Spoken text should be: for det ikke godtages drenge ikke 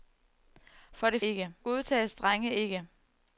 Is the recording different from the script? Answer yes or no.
no